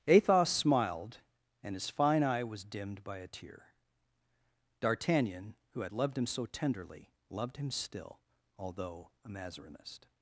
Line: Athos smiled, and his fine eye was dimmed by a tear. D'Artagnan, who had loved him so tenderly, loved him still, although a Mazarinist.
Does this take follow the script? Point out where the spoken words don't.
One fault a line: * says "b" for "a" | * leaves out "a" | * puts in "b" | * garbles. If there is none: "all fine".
all fine